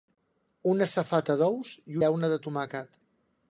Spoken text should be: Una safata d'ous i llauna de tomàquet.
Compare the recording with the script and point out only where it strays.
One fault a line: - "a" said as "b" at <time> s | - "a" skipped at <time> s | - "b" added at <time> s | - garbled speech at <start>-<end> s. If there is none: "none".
none